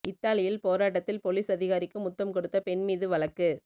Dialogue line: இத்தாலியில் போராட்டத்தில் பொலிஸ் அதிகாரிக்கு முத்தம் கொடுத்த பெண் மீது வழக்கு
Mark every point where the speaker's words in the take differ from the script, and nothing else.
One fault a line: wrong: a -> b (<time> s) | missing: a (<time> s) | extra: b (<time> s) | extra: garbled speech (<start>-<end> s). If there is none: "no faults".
no faults